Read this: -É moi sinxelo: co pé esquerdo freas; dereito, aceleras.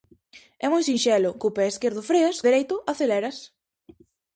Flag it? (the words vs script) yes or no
no